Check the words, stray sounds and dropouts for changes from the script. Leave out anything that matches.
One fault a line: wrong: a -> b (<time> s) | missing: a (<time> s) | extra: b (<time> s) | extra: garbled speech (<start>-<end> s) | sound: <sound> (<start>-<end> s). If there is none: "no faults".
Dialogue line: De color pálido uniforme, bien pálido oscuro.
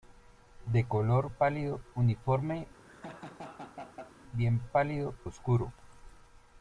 sound: laugh (2.8-4.1 s)